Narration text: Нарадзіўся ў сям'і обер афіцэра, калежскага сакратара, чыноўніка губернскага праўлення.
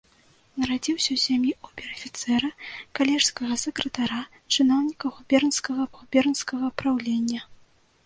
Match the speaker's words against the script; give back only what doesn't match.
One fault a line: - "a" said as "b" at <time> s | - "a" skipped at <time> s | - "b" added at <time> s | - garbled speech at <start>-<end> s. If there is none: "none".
- "губернскага" added at 6.0 s